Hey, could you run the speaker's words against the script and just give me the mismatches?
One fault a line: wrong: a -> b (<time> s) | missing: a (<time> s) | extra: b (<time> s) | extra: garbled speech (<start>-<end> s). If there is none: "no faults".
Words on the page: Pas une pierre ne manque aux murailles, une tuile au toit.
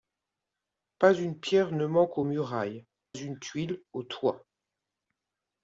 no faults